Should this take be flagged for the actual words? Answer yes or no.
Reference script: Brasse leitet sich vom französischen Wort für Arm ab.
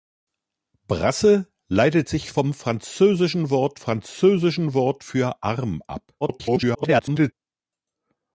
yes